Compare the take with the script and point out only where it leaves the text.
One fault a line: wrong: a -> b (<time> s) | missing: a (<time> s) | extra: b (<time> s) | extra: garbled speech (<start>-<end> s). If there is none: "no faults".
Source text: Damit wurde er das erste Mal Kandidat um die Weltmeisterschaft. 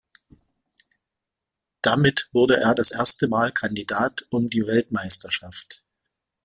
no faults